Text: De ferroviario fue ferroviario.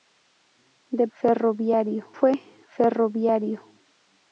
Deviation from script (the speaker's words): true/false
false